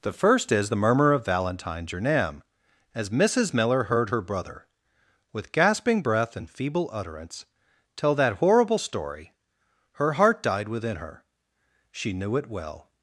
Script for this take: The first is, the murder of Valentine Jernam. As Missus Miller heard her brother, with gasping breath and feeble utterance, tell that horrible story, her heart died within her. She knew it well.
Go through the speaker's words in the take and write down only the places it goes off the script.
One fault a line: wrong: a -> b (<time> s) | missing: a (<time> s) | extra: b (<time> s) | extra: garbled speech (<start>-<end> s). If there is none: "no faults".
wrong: murder -> murmur (0.8 s)